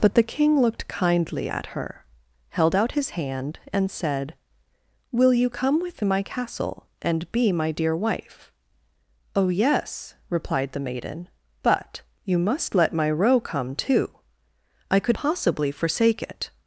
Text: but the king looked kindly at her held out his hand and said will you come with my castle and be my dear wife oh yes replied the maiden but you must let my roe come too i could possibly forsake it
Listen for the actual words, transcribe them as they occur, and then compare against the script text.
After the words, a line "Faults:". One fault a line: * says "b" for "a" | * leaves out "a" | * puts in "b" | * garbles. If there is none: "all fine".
but the king looked kindly at her held out his hand and said will you come with my castle and be my dear wife oh yes replied the maiden but you must let my roe come too i could possibly forsake it
Faults:
all fine